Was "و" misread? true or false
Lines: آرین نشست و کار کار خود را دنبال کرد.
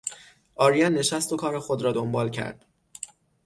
false